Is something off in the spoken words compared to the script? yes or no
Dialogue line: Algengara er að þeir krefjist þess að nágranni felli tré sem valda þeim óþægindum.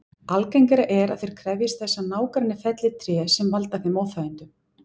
no